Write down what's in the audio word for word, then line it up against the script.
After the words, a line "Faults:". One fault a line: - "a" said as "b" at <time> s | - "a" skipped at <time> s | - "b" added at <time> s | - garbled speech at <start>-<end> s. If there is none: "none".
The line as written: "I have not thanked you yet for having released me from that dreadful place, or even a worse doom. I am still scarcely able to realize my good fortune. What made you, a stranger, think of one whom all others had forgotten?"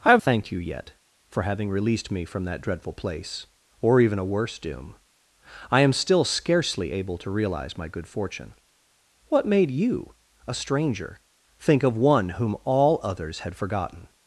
"I have thanked you yet for having released me from that dreadful place, or even a worse doom. I am still scarcely able to realize my good fortune. What made you, a stranger, think of one whom all others had forgotten?"
Faults:
- "not" skipped at 0.2 s